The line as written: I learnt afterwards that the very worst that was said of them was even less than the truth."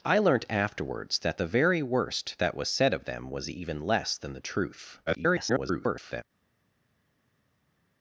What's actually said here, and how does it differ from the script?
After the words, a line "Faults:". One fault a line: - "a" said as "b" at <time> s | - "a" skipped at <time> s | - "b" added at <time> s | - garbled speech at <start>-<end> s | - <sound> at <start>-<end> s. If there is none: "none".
I learnt afterwards that the very worst that was said of them was even less than the truth." [garbled]
Faults:
- garbled speech at 5.1-6.2 s